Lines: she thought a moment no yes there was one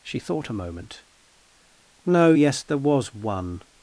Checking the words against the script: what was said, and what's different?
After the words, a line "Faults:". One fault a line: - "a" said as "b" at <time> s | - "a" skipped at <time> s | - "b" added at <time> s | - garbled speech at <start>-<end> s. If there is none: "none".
she thought a moment no yes there was one
Faults:
none